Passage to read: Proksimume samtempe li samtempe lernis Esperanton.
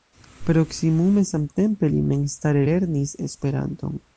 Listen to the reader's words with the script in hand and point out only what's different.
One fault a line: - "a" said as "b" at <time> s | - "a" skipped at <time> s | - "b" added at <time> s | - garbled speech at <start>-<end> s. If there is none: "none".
- "samtempe" said as "memstare" at 2.1 s